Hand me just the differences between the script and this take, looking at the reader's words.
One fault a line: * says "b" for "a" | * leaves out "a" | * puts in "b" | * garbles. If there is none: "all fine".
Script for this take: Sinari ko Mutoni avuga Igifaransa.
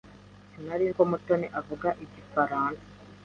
all fine